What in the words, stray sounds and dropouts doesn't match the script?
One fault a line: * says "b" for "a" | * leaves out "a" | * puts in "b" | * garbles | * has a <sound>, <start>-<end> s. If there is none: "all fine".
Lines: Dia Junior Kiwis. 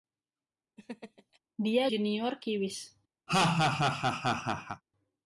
* has a laugh, 0.8-1.4 s
* has a laugh, 3.3-4.8 s